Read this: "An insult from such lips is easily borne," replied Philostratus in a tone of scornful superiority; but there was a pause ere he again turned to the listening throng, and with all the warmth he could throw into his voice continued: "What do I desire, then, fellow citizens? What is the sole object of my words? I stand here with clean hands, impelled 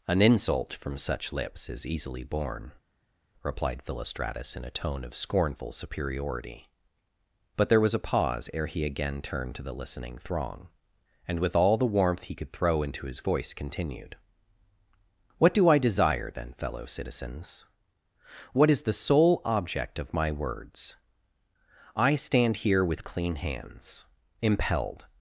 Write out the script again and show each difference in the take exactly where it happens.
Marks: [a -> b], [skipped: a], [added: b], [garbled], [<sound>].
"An insult from such lips is easily borne," replied Philostratus in a tone of scornful superiority; but there was a pause ere he again turned to the listening throng, and with all the warmth he could throw into his voice continued: "What do I desire, then, fellow citizens? What is the sole object of my words? I stand here with clean hands, impelled